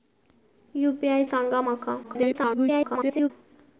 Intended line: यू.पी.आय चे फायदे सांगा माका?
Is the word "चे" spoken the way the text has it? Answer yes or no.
no